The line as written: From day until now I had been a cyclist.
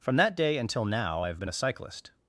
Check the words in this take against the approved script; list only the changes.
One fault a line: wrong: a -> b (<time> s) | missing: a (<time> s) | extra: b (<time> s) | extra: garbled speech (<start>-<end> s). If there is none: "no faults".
extra: that (0.1 s)
wrong: had -> have (1.3 s)